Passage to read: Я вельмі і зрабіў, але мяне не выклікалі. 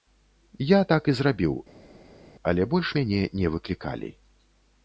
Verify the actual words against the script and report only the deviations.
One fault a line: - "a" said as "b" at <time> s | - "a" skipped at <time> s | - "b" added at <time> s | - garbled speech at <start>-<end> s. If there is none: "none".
- "вельмі" said as "так" at 0.9 s
- "больш" added at 2.7 s